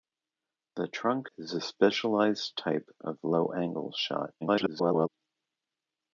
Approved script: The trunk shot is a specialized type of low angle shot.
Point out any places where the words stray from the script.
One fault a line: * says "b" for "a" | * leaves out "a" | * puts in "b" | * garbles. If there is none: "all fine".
* leaves out "shot"
* garbles